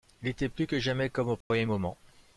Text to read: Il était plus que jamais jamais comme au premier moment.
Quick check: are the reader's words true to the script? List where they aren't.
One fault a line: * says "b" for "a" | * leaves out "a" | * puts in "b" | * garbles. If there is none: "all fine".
* leaves out "jamais"